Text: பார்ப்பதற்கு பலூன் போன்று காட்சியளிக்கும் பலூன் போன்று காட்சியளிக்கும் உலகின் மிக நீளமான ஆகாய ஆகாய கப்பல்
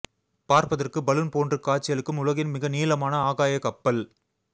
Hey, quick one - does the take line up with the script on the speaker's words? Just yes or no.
no